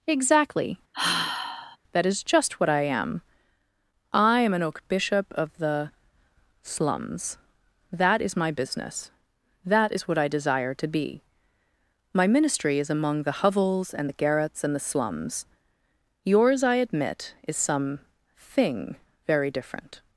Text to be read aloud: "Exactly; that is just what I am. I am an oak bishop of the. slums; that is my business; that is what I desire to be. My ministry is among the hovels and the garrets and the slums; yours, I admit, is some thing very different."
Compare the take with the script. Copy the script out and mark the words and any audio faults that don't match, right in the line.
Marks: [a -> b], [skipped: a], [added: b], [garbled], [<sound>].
"Exactly; [sigh] that is just what I am. I am an oak bishop of the. slums; that is my business; that is what I desire to be. My ministry is among the hovels and the garrets and the slums; yours, I admit, is some thing very different."